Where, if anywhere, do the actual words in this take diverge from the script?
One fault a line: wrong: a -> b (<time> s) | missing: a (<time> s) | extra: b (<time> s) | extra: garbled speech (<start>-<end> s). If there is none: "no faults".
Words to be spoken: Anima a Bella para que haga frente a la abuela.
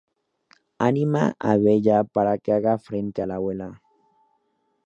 no faults